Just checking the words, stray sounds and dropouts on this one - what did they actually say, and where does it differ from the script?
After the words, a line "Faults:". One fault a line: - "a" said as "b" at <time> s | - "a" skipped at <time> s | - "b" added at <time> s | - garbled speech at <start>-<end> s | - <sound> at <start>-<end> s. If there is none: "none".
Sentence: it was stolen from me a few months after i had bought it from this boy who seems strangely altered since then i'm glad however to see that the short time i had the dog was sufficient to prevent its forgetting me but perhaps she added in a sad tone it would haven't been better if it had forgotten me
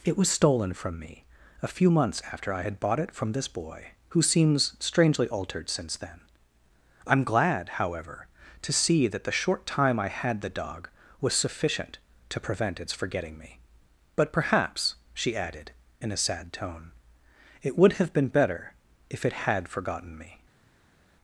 it was stolen from me a few months after i had bought it from this boy who seems strangely altered since then i'm glad however to see that the short time i had the dog was sufficient to prevent its forgetting me but perhaps she added in a sad tone it would have been better if it had forgotten me
Faults:
- "haven't" said as "have" at 17.9 s